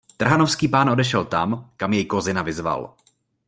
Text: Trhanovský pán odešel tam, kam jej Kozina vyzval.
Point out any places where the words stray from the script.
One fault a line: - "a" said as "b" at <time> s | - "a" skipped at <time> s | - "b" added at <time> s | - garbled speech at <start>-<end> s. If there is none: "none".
none